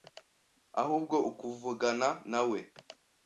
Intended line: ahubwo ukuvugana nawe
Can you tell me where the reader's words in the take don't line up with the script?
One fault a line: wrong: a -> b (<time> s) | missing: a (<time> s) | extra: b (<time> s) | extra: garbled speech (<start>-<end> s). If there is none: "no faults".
no faults